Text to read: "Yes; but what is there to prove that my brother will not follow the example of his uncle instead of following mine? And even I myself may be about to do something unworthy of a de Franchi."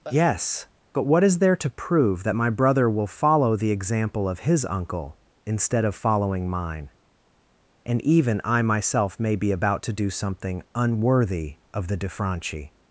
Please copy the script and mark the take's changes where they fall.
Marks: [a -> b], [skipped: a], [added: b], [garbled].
"Yes; but what is there to prove that my brother will [skipped: not] follow the example of his uncle instead of following mine? And even I myself may be about to do something unworthy of [a -> the] de Franchi."